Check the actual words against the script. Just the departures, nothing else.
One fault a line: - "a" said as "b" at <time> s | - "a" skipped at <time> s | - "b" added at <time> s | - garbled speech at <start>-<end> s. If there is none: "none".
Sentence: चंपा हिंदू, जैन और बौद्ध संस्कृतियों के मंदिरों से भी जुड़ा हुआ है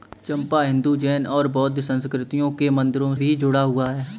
- "से" skipped at 3.1 s